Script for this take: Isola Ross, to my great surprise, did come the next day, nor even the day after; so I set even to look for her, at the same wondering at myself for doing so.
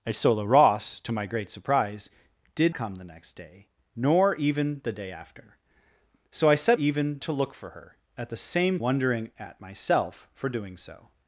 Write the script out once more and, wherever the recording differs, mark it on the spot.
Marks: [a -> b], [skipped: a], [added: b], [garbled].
Isola Ross, to my great surprise, did come the next day, nor even the day after; so I set even to look for her, at the same wondering at myself for doing so.